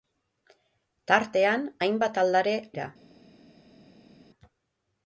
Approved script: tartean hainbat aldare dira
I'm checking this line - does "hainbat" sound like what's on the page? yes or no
yes